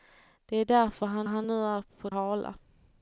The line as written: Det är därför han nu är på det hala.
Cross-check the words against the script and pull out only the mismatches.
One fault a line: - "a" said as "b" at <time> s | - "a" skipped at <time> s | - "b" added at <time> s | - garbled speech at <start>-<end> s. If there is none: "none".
- "han" added at 1.2 s
- "det" skipped at 2.1 s